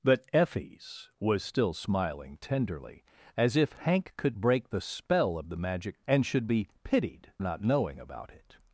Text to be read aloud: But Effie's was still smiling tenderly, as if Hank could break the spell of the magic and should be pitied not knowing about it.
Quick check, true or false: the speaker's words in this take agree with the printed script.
true